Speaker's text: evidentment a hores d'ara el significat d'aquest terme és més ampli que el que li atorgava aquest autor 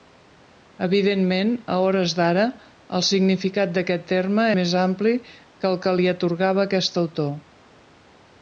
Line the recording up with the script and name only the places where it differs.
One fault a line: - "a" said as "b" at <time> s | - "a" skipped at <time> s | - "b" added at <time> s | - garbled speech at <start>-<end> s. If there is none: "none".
- "és" skipped at 4.5 s